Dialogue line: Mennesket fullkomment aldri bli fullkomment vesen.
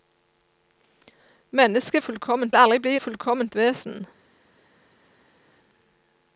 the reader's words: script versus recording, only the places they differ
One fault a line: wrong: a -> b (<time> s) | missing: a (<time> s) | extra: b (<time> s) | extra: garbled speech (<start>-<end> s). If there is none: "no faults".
no faults